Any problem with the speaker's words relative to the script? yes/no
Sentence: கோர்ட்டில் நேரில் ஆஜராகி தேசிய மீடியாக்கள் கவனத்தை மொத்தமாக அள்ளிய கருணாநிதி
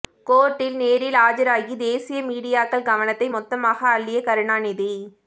no